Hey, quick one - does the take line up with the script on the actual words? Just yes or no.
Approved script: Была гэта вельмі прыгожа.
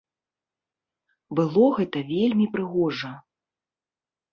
no